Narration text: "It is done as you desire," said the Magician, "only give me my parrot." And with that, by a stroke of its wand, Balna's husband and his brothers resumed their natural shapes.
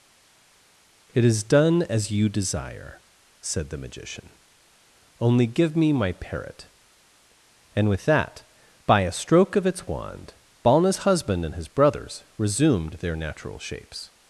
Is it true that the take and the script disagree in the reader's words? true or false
false